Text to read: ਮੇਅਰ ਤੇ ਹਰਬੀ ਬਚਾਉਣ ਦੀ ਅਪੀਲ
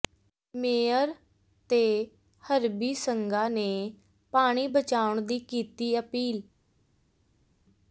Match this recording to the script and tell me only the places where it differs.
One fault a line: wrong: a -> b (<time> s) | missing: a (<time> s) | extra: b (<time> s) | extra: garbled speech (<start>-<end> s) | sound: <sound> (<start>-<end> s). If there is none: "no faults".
extra: ਸੰਘਾ ਨੇ ਪਾਣੀ (2.9 s)
extra: ਕੀਤੀ (5.4 s)